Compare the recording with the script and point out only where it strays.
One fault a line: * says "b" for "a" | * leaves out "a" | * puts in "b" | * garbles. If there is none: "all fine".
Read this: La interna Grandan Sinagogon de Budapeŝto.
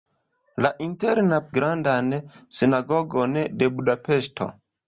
all fine